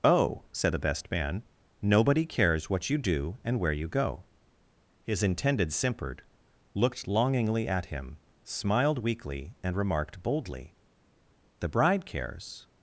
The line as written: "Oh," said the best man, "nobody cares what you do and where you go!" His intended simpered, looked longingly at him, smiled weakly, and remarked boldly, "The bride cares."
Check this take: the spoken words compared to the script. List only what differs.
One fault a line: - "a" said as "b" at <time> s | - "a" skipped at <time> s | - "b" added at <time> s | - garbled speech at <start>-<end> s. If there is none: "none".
none